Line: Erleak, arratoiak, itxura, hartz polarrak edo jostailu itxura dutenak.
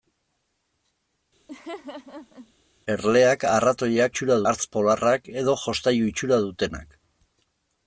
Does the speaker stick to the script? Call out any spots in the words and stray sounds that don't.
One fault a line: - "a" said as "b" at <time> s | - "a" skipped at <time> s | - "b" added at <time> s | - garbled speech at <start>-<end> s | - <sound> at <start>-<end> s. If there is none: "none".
- laugh at 1.5-2.5 s